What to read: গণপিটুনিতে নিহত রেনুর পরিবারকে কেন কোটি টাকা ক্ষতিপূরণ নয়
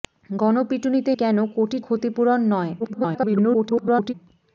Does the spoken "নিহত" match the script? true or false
false